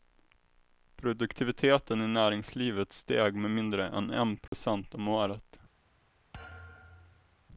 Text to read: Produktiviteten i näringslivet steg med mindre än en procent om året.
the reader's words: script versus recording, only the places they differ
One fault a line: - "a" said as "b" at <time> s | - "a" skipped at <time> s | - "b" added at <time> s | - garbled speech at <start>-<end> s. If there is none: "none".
none